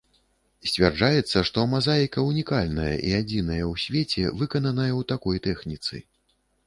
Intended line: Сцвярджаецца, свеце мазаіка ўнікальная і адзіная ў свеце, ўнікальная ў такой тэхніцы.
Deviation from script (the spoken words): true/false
true